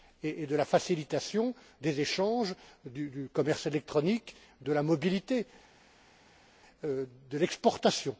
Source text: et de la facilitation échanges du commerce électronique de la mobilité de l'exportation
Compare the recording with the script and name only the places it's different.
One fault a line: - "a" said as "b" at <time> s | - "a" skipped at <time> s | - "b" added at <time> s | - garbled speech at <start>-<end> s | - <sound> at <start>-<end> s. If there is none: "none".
- "des" added at 1.8 s